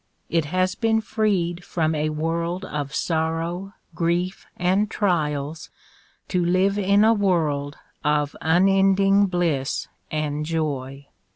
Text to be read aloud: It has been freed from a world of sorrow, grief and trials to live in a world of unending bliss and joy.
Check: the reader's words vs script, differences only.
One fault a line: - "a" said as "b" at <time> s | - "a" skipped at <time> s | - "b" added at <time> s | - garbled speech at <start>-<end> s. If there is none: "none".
none